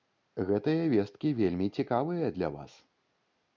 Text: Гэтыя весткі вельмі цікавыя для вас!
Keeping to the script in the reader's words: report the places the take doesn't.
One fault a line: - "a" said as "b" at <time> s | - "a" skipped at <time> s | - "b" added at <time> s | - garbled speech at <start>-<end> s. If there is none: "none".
none